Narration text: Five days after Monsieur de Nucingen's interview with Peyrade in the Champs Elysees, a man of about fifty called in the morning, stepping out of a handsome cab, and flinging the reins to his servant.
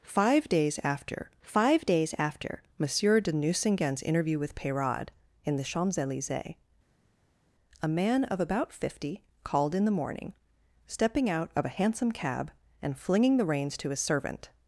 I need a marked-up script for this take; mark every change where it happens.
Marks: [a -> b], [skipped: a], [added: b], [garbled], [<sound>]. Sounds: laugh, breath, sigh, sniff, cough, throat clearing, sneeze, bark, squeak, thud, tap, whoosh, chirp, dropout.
Five days after [added: five days after] Monsieur de Nucingen's interview with Peyrade in the Champs Elysees, a man of about fifty called in the morning, stepping out of a handsome cab, and flinging the reins to his servant.